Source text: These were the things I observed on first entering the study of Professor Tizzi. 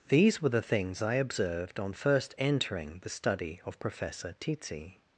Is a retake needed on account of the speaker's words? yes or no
no